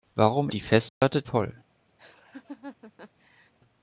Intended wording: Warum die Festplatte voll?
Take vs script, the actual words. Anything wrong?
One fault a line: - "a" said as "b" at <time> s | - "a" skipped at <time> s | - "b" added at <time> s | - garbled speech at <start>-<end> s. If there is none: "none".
none